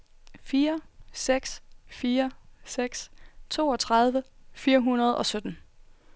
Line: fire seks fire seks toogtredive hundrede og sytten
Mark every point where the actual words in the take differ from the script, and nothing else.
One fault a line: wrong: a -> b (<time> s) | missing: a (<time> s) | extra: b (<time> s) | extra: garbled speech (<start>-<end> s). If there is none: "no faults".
extra: fire (4.5 s)